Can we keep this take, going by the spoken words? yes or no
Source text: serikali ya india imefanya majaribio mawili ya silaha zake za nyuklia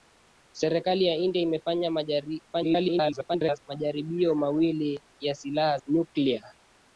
no